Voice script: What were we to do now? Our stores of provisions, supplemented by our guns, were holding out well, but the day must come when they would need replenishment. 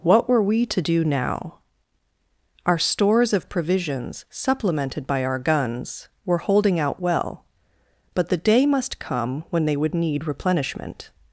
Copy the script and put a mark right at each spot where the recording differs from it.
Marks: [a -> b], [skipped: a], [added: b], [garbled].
What were we to do now? Our stores of provisions, supplemented by our guns, were holding out well, but the day must come when they would need replenishment.